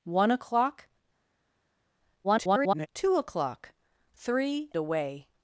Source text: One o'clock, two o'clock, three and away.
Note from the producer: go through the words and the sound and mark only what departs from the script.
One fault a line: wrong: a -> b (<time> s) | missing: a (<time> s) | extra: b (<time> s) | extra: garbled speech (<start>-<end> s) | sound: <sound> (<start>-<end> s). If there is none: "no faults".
extra: garbled speech (2.2-2.9 s)
missing: and (4.7 s)